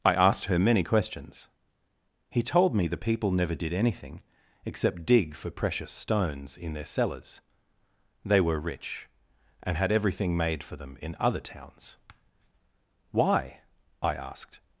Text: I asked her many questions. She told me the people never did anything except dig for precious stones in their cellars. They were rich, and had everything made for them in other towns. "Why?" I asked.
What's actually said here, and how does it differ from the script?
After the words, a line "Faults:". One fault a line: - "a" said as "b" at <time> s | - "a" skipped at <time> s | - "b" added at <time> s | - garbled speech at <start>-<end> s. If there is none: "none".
I asked her many questions. He told me the people never did anything except dig for precious stones in their cellars. They were rich, and had everything made for them in other towns. "Why?" I asked.
Faults:
- "She" said as "He" at 2.3 s